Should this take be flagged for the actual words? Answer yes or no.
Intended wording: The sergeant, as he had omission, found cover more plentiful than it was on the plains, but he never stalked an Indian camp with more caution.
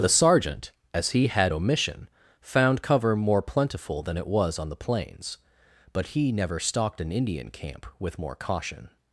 no